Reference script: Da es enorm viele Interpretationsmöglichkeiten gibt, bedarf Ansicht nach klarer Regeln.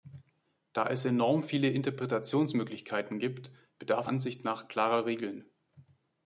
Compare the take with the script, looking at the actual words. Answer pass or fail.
pass